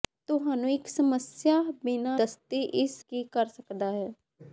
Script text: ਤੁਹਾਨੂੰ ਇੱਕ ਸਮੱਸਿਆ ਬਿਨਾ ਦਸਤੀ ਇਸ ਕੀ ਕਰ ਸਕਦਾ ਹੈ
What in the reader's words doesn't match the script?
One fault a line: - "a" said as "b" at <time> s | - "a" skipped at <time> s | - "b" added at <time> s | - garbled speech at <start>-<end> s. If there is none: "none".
none